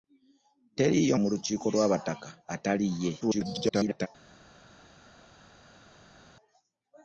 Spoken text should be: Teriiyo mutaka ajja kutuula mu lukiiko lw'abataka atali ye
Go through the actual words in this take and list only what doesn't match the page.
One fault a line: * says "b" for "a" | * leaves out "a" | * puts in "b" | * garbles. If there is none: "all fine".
* leaves out "mutaka ajja kutuula"
* garbles